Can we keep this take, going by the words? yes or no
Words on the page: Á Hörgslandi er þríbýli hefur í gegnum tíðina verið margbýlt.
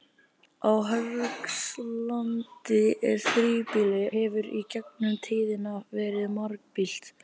yes